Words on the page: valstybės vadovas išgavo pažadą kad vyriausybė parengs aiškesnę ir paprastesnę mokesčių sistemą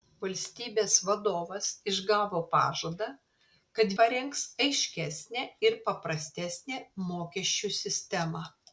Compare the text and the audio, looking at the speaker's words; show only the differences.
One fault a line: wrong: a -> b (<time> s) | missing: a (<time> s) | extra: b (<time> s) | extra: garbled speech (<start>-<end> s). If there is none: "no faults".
missing: vyriausybė (3.9 s)